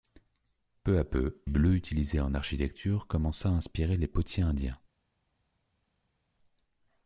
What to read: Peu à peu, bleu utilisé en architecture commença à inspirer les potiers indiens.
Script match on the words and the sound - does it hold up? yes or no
yes